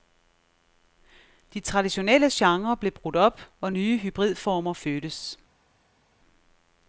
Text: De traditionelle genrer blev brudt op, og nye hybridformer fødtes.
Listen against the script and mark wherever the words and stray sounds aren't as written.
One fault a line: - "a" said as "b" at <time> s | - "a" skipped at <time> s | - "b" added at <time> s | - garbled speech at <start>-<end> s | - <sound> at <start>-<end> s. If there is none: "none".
none